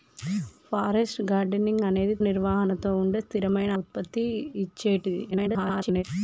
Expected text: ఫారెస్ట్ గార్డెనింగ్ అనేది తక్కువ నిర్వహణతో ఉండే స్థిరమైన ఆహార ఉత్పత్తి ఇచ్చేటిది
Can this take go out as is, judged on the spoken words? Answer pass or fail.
fail